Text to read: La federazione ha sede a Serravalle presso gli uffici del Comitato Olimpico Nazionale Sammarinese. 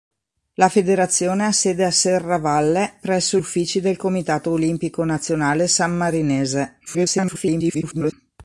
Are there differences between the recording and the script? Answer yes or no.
yes